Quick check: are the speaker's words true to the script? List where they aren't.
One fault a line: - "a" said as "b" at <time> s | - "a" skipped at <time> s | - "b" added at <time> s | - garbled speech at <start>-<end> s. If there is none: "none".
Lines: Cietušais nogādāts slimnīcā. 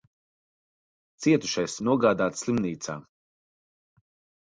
none